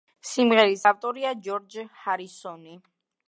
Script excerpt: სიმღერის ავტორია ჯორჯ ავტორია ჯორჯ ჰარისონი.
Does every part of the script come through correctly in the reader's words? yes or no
no